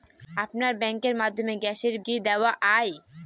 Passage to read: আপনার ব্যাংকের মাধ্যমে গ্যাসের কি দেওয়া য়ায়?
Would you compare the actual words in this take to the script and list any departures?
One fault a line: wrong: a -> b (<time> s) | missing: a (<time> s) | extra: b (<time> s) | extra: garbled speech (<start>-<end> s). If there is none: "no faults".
no faults